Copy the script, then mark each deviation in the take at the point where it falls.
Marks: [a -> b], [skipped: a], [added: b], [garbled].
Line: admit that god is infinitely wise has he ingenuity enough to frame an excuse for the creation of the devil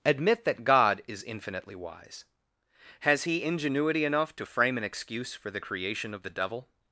admit that god is infinitely wise has he ingenuity enough to frame an excuse for the creation of the devil